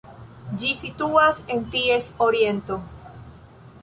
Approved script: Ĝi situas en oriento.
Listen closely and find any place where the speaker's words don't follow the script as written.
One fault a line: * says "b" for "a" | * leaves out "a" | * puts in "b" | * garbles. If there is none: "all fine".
* puts in "ties"